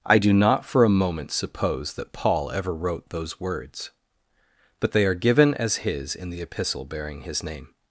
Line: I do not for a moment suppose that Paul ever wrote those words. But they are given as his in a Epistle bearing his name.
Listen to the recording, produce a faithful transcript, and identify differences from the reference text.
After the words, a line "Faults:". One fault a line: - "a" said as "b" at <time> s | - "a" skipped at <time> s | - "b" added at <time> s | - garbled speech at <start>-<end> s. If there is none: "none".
I do not for a moment suppose that Paul ever wrote those words. But they are given as his in the Epistle bearing his name.
Faults:
- "a" said as "the" at 6.3 s